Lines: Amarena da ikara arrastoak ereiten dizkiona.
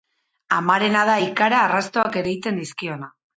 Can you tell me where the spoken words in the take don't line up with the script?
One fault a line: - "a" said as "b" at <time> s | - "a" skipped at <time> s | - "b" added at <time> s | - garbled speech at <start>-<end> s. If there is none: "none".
none